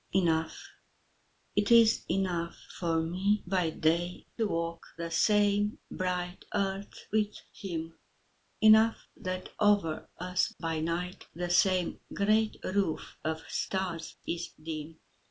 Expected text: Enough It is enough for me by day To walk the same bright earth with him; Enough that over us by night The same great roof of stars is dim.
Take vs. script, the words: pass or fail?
pass